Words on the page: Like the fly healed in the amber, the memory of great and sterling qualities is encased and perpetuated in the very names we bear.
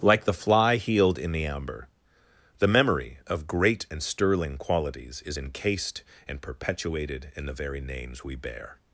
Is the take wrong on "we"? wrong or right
right